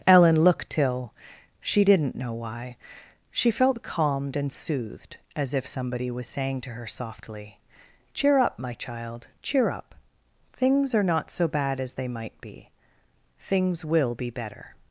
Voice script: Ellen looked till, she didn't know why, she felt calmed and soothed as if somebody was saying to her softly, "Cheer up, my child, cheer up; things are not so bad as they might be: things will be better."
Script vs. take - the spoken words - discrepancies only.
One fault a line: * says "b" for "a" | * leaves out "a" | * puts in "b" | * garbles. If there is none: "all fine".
all fine